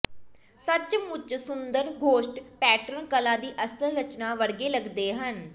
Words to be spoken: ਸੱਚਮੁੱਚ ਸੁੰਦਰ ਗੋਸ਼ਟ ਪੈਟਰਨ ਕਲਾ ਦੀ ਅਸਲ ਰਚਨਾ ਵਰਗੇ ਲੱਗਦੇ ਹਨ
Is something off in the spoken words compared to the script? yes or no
no